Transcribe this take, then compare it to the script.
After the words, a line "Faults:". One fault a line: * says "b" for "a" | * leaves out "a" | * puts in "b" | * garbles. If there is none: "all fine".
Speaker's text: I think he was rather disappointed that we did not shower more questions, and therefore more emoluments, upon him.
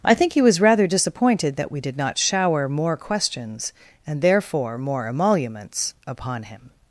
I think he was rather disappointed that we did not shower more questions, and therefore more emoluments, upon him.
Faults:
all fine